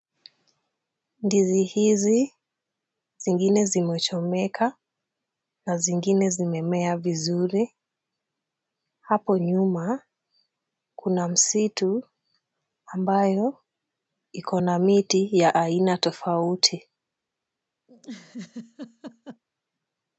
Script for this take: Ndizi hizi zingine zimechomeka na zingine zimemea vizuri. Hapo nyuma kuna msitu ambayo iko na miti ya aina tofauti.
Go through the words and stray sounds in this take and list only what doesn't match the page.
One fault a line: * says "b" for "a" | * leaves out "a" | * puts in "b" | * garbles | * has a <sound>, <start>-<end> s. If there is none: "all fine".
* has a laugh, 17.9-19.4 s